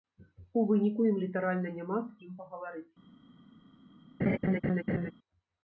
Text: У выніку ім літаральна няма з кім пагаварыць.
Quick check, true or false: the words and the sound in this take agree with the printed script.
false